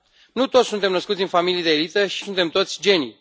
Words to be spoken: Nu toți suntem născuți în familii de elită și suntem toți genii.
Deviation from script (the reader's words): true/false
false